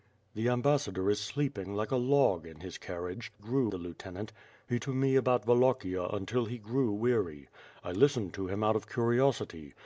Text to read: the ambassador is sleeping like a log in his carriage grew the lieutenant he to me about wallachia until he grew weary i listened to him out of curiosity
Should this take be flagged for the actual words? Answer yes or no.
no